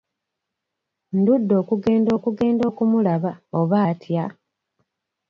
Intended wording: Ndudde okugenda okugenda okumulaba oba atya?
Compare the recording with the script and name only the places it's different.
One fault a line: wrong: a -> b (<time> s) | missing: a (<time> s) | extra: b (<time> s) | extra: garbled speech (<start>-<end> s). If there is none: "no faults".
no faults